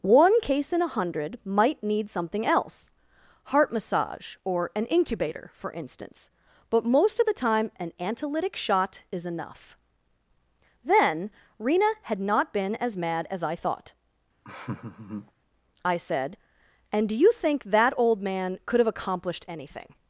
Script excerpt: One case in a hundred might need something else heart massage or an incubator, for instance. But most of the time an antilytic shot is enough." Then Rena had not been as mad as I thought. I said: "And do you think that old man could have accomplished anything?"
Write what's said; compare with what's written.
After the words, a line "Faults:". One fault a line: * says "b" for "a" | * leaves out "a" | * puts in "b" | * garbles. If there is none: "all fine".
One case in a hundred might need something else heart massage or an incubator, for instance. But most of the time an antilytic shot is enough." Then Rena had not been as mad as I thought. I said: "And do you think that old man could have accomplished anything?"
Faults:
all fine